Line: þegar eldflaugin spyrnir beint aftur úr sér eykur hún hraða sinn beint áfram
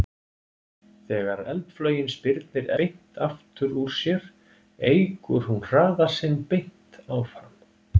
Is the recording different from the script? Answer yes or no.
no